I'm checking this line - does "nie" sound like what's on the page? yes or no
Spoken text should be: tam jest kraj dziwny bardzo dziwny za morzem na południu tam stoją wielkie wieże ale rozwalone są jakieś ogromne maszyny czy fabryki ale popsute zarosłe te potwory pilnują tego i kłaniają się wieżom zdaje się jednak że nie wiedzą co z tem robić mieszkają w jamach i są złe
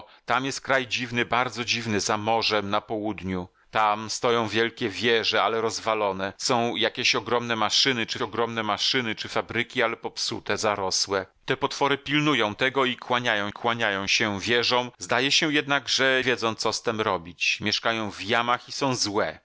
no